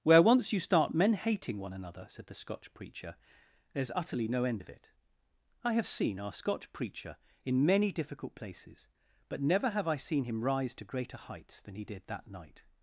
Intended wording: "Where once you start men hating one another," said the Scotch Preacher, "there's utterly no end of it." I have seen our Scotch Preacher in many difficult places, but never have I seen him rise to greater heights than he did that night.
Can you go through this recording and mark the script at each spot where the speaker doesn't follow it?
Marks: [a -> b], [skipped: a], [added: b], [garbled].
"Where once you start men hating one another," said the Scotch Preacher, "there's utterly no end of it." I have seen our Scotch Preacher in many difficult places, but never have I seen him rise to greater heights than he did that night.